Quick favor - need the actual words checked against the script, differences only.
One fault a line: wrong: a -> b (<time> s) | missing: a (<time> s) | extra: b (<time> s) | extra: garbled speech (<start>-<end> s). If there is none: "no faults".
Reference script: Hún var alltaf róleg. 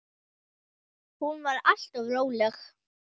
no faults